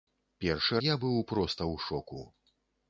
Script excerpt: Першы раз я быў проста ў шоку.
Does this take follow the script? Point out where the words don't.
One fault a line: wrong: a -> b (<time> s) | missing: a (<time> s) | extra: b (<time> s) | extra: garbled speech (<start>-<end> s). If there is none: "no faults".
missing: раз (0.8 s)